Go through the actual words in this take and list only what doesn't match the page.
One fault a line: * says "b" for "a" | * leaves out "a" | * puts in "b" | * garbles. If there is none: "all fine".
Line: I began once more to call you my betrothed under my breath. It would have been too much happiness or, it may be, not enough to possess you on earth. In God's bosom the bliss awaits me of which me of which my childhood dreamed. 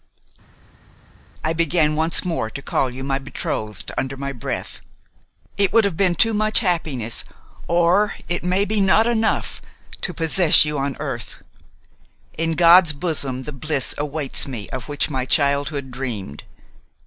* leaves out "me of which"